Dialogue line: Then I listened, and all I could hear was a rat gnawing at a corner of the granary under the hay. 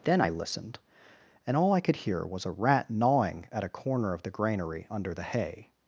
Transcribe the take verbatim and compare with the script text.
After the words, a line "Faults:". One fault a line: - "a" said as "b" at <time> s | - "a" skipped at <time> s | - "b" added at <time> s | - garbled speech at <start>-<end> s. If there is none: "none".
Then I listened, and all I could hear was a rat gnawing at a corner of the granary under the hay.
Faults:
none